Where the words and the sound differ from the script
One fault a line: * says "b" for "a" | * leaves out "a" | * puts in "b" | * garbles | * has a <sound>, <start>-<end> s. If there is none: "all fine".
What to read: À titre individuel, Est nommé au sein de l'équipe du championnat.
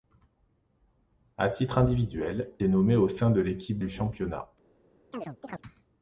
* has a chirp, 5.1-5.6 s